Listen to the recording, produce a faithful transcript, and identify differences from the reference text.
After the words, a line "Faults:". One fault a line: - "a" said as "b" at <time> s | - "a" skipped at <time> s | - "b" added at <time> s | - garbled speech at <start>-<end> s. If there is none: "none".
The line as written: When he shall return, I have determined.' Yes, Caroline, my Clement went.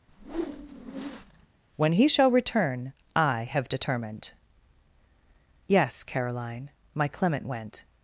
When he shall return, I have determined.' Yes, Caroline, my Clement went.
Faults:
none